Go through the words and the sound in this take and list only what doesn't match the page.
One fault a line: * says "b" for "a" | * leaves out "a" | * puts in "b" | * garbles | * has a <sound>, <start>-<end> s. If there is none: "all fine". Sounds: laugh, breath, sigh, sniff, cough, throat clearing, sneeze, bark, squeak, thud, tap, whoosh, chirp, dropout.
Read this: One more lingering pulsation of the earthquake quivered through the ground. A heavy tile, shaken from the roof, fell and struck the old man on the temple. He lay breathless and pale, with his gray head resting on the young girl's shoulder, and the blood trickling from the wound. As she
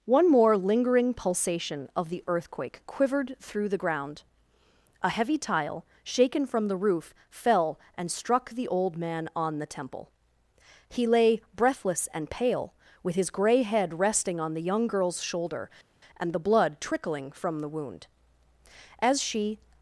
all fine